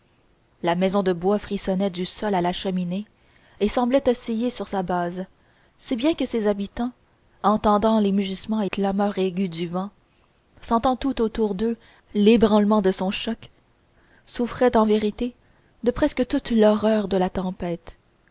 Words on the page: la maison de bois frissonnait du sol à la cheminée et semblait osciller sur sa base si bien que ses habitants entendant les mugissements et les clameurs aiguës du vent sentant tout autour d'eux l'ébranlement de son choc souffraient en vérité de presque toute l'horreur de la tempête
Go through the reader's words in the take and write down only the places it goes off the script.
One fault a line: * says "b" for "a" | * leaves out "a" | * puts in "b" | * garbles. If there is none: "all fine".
* leaves out "les"